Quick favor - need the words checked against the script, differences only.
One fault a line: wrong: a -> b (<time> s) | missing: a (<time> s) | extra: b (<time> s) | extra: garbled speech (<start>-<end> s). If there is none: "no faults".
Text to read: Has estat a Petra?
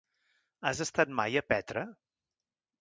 extra: mai (1.2 s)